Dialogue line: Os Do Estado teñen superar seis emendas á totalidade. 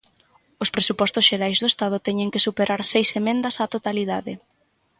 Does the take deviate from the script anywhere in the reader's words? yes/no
yes